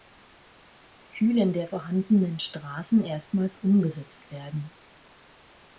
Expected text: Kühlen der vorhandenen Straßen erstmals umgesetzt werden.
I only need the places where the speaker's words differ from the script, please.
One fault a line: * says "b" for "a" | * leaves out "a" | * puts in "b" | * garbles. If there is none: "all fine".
all fine